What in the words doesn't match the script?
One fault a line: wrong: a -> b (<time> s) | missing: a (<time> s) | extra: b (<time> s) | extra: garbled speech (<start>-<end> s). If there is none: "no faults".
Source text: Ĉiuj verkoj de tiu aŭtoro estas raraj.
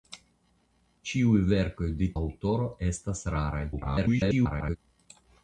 missing: tiu (2.1 s)
extra: garbled speech (3.7-4.8 s)